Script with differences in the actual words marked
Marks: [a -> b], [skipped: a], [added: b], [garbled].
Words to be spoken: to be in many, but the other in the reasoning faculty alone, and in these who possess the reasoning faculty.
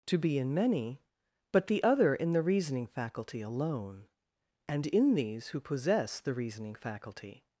to be in many, but the other in the reasoning faculty alone, and in these who possess the reasoning faculty.